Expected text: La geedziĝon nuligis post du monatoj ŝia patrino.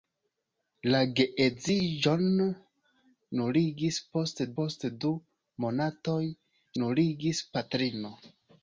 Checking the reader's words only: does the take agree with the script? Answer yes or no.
no